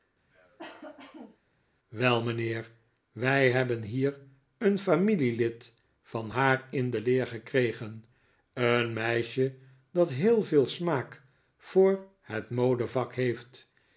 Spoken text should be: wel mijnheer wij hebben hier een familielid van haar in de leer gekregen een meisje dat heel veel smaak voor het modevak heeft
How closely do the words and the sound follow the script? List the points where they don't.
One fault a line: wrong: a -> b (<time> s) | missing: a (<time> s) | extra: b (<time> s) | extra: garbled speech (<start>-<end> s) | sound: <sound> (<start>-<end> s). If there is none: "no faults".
sound: cough (0.3-1.4 s)